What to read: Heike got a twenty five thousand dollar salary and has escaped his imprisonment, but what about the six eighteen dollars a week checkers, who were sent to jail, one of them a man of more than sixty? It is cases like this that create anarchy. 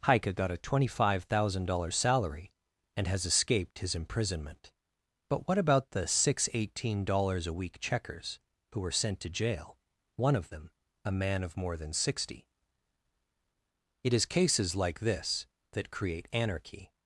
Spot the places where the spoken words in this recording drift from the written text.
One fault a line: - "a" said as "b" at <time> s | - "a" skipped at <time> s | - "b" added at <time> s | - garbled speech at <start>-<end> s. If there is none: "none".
none